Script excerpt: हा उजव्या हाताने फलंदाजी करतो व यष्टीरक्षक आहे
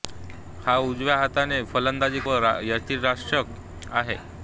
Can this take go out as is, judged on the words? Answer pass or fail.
fail